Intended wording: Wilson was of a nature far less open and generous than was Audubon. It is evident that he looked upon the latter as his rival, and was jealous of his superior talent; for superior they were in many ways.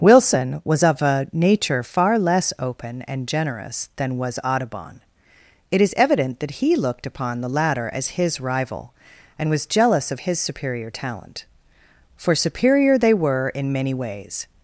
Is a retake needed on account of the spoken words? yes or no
no